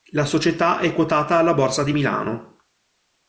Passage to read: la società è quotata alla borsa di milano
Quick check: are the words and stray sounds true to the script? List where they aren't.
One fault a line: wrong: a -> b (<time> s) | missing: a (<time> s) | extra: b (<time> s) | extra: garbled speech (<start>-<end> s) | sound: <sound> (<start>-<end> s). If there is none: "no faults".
no faults